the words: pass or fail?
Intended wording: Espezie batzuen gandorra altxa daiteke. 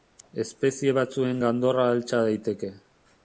pass